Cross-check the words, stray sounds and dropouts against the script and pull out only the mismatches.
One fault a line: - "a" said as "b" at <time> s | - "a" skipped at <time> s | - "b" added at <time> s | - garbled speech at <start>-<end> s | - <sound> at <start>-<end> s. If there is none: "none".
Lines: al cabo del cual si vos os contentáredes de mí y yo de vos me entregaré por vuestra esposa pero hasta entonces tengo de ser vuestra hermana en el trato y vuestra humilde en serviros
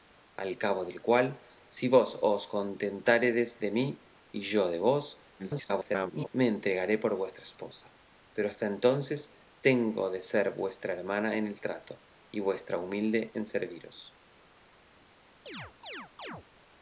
- garbled speech at 5.4-6.3 s
- chirp at 15.5-16.5 s